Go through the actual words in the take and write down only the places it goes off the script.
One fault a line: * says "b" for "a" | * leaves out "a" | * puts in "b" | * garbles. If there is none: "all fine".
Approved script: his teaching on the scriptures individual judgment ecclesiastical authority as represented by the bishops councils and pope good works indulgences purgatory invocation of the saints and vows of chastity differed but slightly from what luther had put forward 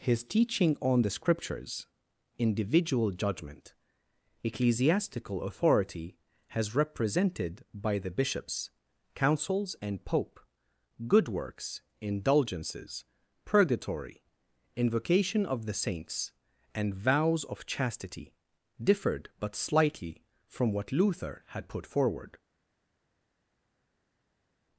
* says "has" for "as"